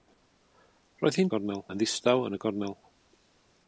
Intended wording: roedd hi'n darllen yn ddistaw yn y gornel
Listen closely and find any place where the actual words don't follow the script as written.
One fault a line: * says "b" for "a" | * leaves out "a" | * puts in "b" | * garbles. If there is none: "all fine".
* says "gornel" for "darllen"